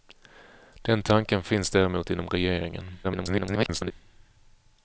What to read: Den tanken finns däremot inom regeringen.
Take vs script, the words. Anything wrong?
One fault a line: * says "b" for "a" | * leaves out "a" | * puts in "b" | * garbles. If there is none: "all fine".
* garbles